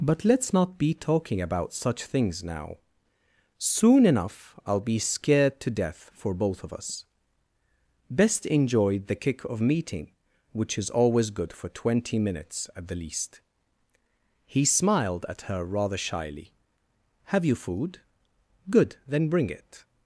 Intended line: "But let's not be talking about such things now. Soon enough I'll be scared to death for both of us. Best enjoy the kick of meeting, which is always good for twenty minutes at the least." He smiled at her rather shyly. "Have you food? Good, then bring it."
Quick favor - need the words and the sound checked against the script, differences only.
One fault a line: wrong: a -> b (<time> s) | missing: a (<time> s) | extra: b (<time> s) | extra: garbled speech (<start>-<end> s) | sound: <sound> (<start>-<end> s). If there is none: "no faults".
no faults